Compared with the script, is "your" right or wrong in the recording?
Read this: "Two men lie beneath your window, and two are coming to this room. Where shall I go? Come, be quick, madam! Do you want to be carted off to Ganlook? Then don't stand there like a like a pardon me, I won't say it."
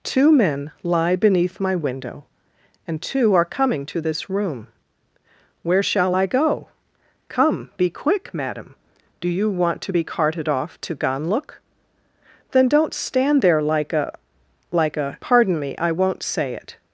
wrong